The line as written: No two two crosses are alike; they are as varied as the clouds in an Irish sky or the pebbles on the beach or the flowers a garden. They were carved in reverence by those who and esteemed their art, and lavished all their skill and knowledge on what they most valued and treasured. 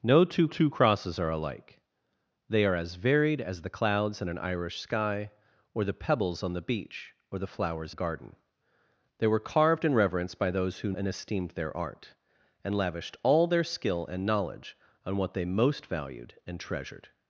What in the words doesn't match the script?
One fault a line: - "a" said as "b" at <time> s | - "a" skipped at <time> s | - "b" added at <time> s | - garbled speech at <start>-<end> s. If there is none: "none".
none